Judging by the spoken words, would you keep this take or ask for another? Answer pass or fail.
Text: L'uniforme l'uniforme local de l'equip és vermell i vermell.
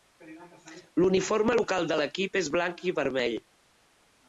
fail